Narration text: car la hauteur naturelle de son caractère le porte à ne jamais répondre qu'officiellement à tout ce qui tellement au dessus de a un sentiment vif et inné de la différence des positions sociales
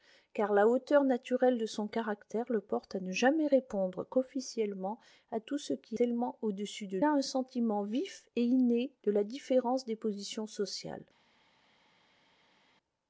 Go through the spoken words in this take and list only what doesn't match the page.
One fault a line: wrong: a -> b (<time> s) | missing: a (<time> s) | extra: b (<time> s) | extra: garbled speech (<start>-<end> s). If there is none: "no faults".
no faults